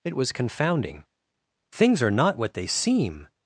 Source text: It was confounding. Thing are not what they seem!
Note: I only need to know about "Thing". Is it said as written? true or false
false